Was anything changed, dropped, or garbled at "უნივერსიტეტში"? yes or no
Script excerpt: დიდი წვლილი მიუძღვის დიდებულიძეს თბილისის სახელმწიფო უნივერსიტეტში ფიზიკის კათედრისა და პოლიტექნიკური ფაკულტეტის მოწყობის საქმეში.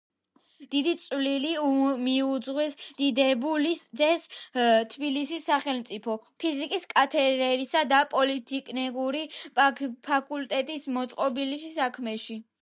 yes